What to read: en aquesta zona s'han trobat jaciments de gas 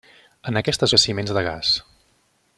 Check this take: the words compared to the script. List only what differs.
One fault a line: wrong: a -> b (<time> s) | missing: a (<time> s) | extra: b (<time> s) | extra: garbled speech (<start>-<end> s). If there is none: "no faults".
missing: zona s'han trobat (0.9 s)